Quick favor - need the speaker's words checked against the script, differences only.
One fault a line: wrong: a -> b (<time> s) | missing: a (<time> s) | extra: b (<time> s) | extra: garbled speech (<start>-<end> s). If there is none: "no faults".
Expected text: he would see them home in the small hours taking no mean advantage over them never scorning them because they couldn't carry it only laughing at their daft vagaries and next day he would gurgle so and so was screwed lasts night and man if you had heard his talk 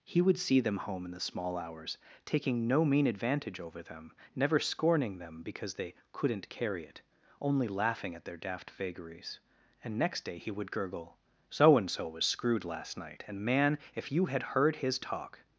wrong: lasts -> last (12.7 s)